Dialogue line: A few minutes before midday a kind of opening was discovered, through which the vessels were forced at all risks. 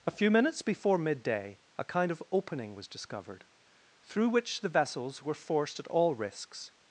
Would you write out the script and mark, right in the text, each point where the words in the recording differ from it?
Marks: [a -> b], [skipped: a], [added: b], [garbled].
A few minutes before midday a kind of opening was discovered, through which the vessels were forced at all risks.